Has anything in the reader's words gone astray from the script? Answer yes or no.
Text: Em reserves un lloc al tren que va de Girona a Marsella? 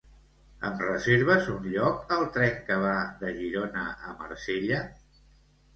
no